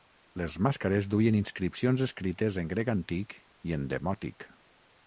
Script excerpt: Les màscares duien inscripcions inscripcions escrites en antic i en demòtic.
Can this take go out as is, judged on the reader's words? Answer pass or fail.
fail